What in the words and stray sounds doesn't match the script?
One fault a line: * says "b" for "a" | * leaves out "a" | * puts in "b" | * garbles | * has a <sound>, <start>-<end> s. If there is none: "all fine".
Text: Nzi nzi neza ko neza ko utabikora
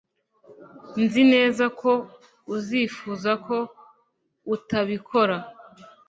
* leaves out "nzi"
* says "uzifuza" for "neza"